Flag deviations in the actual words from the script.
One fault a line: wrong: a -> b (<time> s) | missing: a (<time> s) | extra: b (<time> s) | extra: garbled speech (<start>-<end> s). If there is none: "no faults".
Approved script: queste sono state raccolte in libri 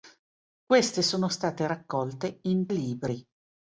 no faults